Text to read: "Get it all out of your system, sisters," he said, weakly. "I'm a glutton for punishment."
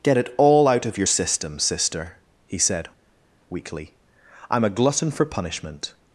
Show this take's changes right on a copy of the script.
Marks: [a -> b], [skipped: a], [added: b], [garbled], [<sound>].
"Get it all out of your system, [sisters," -> sister] he said, weakly. "I'm a glutton for punishment."